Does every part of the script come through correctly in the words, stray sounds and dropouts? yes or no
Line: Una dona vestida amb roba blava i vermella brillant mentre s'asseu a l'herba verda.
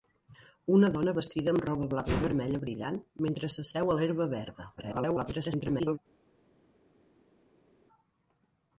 no